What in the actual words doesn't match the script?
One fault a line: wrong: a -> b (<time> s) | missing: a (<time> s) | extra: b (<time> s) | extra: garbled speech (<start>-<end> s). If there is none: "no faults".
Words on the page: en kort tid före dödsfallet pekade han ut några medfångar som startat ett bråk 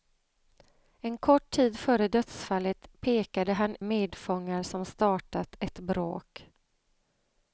missing: ut några (3.8 s)